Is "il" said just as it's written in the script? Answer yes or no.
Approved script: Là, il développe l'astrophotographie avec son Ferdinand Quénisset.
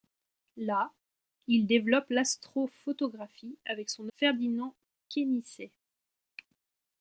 yes